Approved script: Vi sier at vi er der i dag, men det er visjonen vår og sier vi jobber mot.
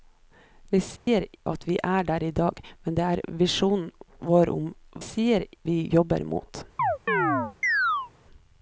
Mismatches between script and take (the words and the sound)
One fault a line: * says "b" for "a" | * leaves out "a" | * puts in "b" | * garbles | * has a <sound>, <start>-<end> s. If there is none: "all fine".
* has a dropout, 1.0-1.1 s
* has a chirp, 6.8-8.1 s